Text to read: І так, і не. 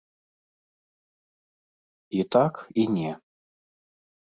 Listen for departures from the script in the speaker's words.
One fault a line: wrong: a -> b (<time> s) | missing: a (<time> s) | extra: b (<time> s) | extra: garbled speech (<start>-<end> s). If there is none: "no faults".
no faults